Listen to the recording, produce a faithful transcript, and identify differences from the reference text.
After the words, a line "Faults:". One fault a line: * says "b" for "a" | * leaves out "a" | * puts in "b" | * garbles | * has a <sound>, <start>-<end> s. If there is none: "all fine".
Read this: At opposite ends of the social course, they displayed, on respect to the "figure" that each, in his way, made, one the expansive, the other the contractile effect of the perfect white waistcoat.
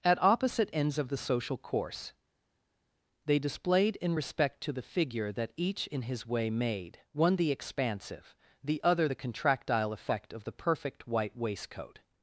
At opposite ends of the social course, they displayed, in respect to the "figure" that each, in his way, made, one the expansive, the other the contractile effect of the perfect white waistcoat.
Faults:
* says "in" for "on"